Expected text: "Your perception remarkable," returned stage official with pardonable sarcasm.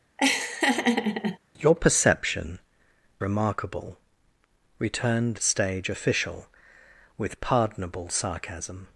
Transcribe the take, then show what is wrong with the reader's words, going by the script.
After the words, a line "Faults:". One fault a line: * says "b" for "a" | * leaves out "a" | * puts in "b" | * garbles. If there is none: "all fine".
"Your perception remarkable," returned stage official with pardonable sarcasm.
Faults:
all fine